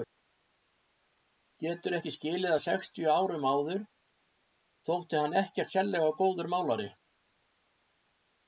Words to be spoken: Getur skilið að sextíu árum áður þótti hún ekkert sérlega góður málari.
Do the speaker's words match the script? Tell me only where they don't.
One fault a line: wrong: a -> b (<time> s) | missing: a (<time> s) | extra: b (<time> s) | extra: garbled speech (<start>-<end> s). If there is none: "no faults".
extra: ekki (2.0 s)
wrong: hún -> hann (5.2 s)